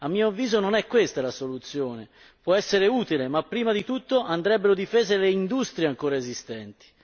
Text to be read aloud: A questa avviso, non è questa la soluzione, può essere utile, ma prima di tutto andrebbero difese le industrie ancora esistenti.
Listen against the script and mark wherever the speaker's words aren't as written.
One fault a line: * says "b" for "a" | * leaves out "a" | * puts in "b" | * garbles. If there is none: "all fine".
* says "mio" for "questa"